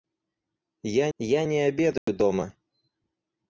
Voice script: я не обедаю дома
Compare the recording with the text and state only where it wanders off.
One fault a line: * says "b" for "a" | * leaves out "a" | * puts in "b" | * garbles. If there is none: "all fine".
* puts in "я"